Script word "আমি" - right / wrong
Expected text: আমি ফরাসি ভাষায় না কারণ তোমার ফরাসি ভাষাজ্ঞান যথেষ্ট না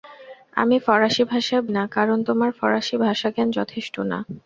right